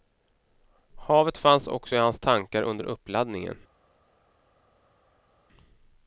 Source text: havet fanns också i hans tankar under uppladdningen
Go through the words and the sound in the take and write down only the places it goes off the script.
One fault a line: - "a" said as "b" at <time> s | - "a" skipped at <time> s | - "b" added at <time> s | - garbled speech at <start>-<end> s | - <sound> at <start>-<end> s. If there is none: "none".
none